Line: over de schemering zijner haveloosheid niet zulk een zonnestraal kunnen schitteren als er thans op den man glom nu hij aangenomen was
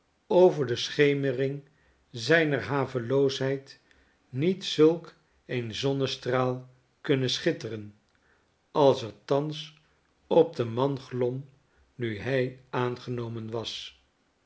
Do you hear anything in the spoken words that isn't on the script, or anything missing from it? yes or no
no